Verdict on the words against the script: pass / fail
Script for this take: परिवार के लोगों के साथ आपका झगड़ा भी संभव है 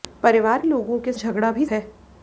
fail